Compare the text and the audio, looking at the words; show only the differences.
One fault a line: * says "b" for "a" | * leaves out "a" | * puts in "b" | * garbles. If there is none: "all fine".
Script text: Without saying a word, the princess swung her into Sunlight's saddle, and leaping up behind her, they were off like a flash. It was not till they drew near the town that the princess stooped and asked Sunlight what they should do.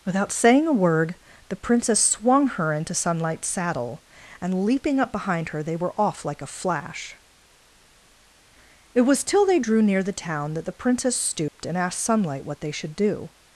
* leaves out "not"